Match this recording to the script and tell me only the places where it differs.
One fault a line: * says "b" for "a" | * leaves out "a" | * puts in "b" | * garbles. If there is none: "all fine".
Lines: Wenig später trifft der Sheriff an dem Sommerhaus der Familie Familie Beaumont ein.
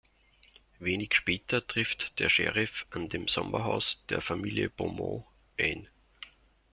* leaves out "Familie"